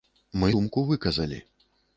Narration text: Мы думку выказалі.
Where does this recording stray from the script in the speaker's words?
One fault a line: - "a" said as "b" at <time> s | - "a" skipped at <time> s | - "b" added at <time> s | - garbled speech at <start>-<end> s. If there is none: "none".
none